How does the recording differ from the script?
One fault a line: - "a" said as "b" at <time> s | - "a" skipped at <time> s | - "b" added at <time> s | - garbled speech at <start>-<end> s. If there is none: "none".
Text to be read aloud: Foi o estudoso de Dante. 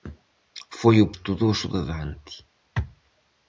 none